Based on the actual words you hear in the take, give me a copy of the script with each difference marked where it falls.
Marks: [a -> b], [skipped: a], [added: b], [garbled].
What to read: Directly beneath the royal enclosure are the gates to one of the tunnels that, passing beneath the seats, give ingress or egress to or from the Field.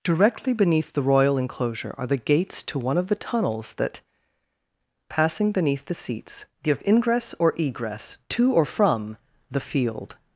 Directly beneath the royal enclosure are the gates to one of the tunnels that, passing beneath the seats, give ingress or egress to or from the Field.